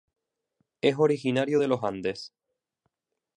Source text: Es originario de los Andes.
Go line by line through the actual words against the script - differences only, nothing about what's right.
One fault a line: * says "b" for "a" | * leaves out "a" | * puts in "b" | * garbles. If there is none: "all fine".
all fine